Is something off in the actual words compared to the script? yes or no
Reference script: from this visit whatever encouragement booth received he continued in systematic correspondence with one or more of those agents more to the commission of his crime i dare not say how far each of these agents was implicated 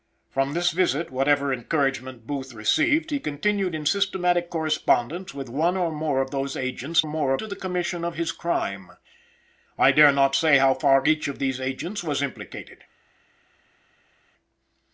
no